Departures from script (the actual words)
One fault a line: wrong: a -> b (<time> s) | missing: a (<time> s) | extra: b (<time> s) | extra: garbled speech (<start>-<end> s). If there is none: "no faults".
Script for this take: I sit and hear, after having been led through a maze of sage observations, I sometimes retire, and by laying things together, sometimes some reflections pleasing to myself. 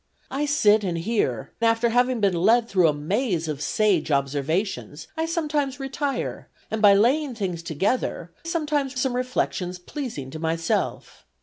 no faults